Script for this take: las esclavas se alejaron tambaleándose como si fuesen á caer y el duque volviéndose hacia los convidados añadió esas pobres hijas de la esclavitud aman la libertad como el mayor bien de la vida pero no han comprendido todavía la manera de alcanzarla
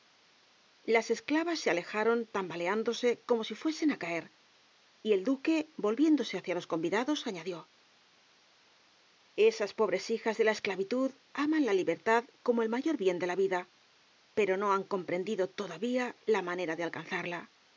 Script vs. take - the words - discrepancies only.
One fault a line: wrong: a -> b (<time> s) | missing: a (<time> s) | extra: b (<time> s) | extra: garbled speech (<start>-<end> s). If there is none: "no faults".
no faults